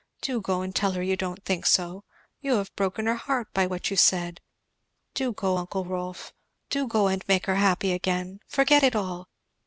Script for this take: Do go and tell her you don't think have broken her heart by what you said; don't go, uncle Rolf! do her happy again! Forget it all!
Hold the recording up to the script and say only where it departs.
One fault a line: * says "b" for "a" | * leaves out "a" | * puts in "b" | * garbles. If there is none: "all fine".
* puts in "so you"
* says "do" for "don't"
* puts in "go and make"